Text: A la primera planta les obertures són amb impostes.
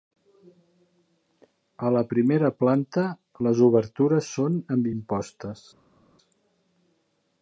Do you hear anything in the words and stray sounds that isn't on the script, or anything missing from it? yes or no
no